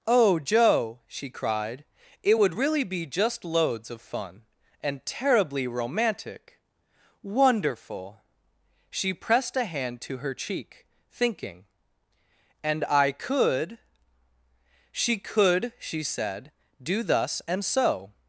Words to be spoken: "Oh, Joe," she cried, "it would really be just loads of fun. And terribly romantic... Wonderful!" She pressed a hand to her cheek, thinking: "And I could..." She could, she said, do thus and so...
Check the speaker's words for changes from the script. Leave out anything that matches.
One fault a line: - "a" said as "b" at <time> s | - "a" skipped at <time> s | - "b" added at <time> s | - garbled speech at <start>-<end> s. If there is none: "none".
none